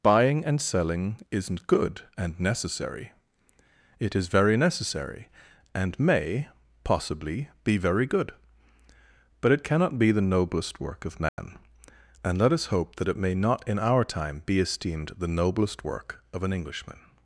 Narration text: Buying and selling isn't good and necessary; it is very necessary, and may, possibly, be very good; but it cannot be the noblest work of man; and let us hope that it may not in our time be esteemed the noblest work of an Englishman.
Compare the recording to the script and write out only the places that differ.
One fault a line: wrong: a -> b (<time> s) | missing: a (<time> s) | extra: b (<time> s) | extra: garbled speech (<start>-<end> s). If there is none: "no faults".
no faults